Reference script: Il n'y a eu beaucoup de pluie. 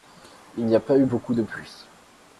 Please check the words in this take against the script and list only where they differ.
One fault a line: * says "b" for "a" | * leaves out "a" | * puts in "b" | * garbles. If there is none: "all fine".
* puts in "pas"